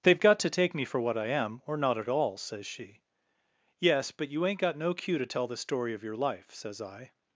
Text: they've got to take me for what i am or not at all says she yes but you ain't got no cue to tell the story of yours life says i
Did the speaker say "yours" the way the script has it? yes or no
no